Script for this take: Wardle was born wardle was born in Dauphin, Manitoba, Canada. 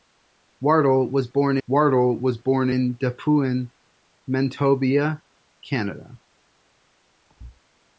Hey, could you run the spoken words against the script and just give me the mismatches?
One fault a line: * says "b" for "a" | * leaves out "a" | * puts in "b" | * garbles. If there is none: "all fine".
all fine